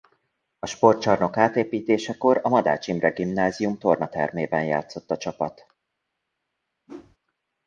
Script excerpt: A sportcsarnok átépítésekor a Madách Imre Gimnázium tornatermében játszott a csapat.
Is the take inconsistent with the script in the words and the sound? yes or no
yes